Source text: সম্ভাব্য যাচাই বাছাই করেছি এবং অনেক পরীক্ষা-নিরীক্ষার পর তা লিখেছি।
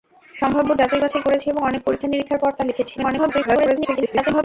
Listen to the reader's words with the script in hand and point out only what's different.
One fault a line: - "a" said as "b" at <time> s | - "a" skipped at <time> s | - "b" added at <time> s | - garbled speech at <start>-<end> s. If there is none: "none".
- garbled speech at 3.0-4.4 s